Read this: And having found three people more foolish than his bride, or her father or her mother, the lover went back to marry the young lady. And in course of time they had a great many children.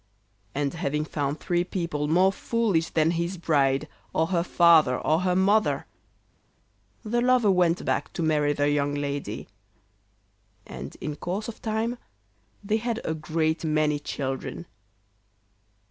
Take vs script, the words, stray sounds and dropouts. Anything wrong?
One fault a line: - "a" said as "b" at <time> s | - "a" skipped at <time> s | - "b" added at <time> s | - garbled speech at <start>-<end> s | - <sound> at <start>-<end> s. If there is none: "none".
none